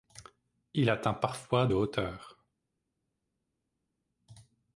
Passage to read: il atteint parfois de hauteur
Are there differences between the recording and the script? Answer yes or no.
yes